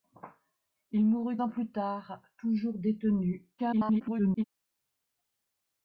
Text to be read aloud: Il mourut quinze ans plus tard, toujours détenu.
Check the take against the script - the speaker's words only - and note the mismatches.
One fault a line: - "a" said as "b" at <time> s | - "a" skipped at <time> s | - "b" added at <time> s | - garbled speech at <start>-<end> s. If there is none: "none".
- "quinze" skipped at 1.4 s
- garbled speech at 3.6-4.4 s